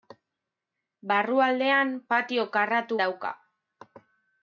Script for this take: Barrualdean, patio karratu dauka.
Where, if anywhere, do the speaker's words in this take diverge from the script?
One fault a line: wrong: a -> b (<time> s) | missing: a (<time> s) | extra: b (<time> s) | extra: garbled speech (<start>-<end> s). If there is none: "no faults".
no faults